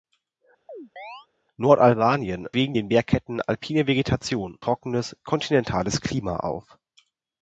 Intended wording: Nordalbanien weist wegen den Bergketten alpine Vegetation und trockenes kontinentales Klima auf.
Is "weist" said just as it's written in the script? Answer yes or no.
no